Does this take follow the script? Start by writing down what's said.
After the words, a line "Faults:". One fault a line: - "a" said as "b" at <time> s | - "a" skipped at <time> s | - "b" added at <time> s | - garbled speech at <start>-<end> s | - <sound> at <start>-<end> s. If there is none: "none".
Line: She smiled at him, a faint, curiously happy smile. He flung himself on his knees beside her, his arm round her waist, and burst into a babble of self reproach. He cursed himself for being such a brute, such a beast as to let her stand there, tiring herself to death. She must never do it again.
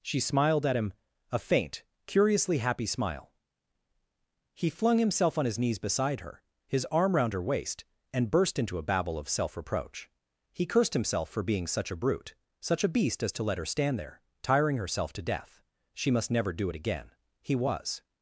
She smiled at him, a faint, curiously happy smile. He flung himself on his knees beside her, his arm round her waist, and burst into a babble of self reproach. He cursed himself for being such a brute, such a beast as to let her stand there, tiring herself to death. She must never do it again. He was
Faults:
- "He was" added at 17.4 s